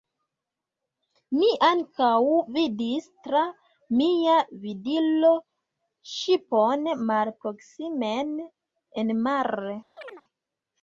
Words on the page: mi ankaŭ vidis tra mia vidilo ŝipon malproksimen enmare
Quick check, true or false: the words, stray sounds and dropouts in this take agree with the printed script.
false